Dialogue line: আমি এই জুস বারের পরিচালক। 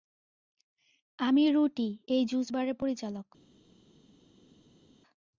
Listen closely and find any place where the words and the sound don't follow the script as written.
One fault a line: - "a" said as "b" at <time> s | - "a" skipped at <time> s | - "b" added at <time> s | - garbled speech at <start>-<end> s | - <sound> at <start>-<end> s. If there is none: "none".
- "রুটি" added at 1.5 s